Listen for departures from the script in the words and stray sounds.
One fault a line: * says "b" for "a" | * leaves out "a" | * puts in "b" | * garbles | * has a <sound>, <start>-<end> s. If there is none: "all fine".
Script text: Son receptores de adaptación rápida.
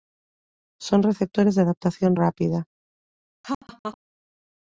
* has a laugh, 3.4-4.0 s